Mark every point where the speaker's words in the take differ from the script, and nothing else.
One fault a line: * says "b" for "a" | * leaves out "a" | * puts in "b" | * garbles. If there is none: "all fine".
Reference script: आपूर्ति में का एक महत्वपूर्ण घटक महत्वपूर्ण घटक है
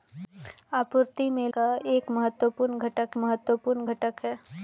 all fine